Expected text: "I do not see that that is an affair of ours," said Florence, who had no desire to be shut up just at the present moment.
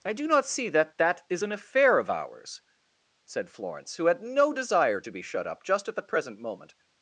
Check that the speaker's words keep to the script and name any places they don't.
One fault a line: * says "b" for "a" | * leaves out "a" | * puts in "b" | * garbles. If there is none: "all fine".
all fine